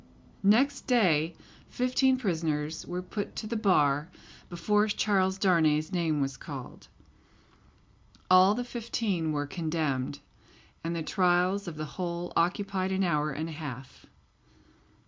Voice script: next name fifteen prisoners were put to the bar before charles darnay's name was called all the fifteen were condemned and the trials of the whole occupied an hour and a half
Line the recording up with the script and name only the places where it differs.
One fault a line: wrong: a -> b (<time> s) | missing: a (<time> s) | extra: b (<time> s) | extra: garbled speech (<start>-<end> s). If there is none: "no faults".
wrong: name -> day (0.9 s)